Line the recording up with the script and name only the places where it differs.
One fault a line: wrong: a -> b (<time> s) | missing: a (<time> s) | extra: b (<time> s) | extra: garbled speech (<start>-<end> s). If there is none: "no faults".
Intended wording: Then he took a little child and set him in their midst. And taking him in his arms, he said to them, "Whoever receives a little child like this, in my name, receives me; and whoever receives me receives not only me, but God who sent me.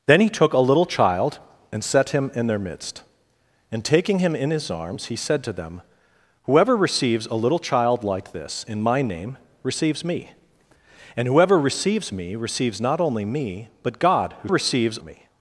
wrong: sent -> receives (14.5 s)